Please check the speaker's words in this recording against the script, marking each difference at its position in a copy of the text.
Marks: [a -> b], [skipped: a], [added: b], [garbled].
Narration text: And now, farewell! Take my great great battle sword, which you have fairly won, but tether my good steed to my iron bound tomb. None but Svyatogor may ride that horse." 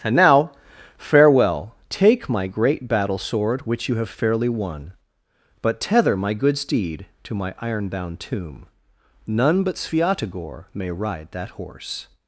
And now, farewell! Take my great [skipped: great] battle sword, which you have fairly won, but tether my good steed to my iron bound tomb. None but Svyatogor may ride that horse."